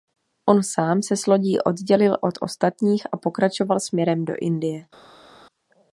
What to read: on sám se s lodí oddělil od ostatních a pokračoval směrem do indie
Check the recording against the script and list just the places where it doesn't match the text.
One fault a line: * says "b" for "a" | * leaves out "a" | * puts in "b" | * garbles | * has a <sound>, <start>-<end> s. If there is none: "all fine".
all fine